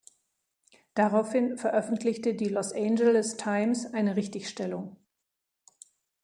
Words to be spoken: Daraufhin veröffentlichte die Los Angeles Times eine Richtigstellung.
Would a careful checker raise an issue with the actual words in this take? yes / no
no